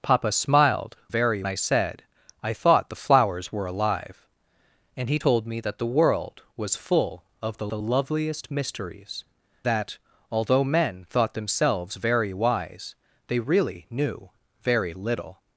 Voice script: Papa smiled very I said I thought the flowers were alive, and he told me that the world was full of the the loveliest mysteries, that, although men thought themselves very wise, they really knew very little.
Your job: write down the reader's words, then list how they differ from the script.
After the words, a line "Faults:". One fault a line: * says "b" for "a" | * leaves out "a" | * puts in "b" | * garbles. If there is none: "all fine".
Papa smiled very I said I thought the flowers were alive, and he told me that the world was full of the the loveliest mysteries, that, although men thought themselves very wise, they really knew very little.
Faults:
all fine